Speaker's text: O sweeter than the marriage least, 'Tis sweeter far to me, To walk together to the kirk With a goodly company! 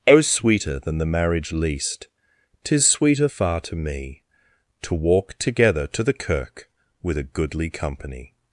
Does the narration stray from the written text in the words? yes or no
no